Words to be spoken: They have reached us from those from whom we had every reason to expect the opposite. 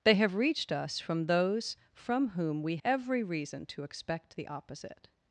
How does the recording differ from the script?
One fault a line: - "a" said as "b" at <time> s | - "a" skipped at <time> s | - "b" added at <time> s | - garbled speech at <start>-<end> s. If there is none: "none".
- "had" skipped at 2.8 s